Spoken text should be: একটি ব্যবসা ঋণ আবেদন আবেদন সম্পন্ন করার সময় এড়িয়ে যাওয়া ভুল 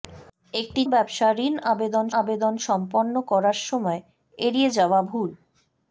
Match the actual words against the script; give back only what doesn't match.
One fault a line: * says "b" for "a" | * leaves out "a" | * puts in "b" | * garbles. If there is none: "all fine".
all fine